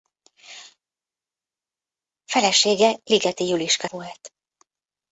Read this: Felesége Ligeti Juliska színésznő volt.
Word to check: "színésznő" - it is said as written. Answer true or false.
false